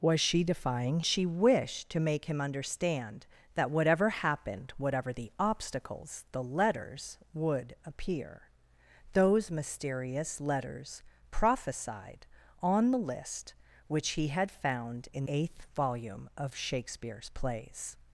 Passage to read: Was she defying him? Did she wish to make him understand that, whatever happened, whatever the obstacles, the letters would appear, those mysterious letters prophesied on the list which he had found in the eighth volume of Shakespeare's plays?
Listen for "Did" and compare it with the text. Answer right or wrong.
wrong